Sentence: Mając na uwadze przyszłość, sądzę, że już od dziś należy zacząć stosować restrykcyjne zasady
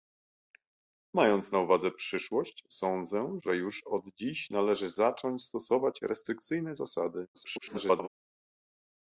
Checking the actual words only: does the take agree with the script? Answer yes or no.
no